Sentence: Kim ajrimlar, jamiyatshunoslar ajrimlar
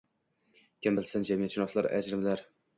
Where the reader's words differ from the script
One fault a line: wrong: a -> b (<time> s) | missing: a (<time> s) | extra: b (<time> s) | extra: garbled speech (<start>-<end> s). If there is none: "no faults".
wrong: ajrimlar -> bilsin (1.0 s)